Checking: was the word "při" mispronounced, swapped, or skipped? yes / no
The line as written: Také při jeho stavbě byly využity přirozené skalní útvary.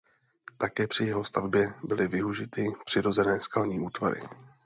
no